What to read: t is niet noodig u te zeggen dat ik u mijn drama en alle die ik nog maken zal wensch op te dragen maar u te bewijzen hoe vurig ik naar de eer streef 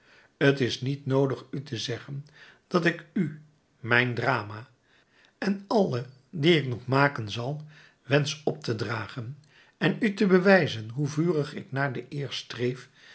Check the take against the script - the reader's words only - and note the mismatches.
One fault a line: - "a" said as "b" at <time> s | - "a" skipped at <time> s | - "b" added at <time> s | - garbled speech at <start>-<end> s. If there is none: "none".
- "maar" said as "en" at 9.8 s